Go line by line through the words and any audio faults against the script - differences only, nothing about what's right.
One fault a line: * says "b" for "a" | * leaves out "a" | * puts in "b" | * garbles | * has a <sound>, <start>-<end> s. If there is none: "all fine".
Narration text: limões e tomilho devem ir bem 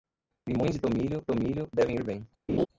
* puts in "tomilho"
* has a laugh, 2.5-2.7 s